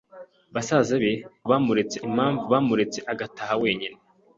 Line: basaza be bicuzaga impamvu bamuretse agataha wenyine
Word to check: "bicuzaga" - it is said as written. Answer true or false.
false